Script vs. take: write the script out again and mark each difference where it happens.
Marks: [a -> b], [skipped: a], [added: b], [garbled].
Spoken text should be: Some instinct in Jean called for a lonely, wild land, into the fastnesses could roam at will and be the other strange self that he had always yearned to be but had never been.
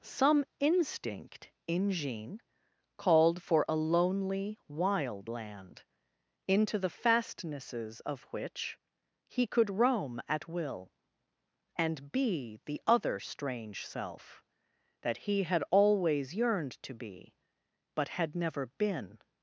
Some instinct in Jean called for a lonely, wild land, into the fastnesses [added: of which he] could roam at will and be the other strange self that he had always yearned to be but had never been.